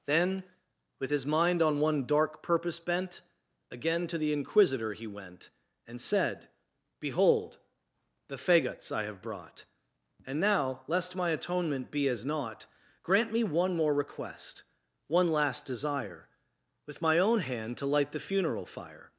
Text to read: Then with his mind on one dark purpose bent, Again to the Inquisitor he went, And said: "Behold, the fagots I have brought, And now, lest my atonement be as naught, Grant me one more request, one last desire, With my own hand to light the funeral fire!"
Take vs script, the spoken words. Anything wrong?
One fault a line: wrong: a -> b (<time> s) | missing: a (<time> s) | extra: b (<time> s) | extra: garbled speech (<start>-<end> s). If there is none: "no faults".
no faults